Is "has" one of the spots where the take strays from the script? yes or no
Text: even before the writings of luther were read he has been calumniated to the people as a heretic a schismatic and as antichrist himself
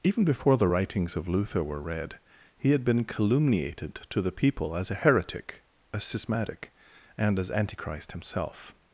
yes